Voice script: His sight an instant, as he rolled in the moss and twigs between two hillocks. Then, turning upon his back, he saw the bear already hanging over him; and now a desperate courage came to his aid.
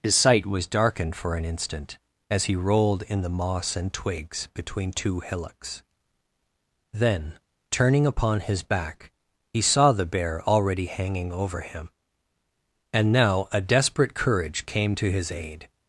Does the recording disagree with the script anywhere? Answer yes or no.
yes